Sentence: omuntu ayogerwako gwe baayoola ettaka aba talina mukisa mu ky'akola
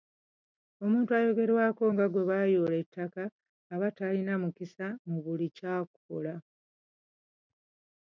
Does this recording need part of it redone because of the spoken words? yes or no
yes